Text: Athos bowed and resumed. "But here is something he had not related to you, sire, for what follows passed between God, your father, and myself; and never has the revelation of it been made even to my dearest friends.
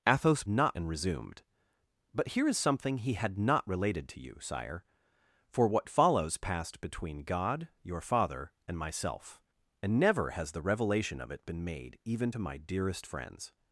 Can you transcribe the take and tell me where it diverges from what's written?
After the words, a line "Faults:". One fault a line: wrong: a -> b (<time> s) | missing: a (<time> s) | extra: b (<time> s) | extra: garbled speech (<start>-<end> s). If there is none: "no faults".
Athos not and resumed. "But here is something he had not related to you, sire, for what follows passed between God, your father, and myself; and never has the revelation of it been made even to my dearest friends.
Faults:
wrong: bowed -> not (0.5 s)